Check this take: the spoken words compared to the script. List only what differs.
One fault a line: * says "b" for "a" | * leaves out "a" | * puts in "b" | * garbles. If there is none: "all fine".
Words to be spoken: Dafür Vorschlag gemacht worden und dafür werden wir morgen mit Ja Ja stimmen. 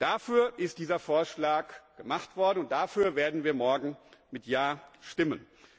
* puts in "ist dieser"
* leaves out "Ja"